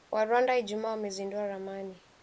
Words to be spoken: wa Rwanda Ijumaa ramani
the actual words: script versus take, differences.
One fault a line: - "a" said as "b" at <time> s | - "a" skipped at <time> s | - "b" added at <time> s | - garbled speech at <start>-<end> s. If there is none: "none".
- "wamezindua" added at 0.9 s